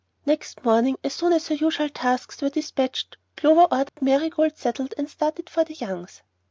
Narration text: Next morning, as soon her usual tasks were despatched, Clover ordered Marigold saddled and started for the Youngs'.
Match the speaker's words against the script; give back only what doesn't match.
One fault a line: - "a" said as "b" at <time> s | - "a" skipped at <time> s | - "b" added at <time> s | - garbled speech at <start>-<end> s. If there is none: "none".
- "as" added at 1.3 s